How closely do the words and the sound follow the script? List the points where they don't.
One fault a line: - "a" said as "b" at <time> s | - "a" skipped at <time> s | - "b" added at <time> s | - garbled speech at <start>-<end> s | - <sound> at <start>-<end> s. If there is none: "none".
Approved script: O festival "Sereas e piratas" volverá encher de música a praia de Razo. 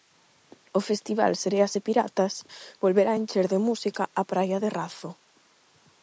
none